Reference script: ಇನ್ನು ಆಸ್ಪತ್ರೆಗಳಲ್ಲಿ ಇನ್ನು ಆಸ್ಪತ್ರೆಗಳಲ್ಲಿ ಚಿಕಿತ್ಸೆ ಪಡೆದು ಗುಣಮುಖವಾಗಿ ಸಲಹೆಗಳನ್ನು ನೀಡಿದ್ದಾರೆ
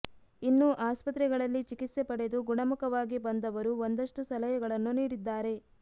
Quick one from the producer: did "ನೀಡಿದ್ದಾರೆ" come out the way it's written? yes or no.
yes